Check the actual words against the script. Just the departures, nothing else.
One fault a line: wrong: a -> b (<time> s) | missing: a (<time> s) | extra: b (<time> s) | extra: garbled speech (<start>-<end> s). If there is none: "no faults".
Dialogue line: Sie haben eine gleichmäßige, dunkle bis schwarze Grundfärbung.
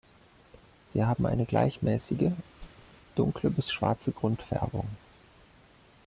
no faults